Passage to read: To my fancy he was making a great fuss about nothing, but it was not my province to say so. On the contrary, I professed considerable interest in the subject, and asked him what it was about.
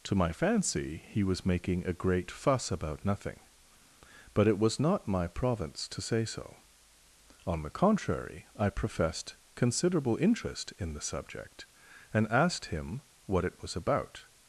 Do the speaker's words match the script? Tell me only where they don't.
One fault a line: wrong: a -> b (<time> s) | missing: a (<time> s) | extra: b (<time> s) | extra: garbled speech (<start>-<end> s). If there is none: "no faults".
no faults